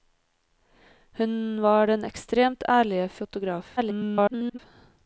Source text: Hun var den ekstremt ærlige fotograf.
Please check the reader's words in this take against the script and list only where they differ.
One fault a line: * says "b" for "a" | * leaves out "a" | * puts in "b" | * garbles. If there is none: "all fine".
* garbles